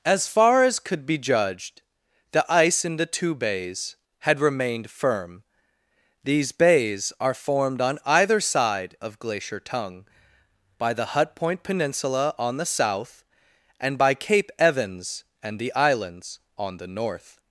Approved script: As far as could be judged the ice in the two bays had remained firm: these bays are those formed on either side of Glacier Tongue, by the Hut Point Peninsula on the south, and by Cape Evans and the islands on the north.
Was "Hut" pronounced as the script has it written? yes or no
yes